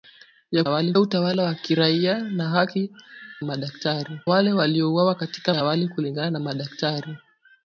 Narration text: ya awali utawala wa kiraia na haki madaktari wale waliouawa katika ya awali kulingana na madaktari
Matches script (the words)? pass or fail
pass